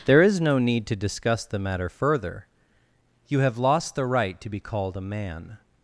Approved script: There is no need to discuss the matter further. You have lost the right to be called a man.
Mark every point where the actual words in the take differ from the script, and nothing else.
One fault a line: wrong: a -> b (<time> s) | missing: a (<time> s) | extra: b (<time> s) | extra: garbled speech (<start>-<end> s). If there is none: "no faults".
no faults